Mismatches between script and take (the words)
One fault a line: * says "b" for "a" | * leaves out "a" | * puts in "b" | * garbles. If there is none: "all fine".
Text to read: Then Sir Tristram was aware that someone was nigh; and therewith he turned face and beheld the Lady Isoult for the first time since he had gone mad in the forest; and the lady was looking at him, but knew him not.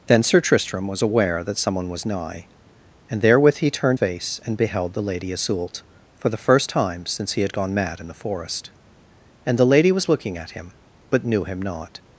all fine